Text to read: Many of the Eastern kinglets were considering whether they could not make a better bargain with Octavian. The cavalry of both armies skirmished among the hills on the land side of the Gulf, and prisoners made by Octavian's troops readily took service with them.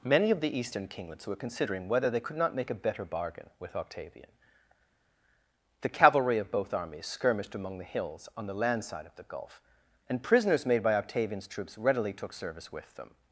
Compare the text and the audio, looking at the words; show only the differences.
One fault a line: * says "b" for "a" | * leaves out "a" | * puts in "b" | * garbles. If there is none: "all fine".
all fine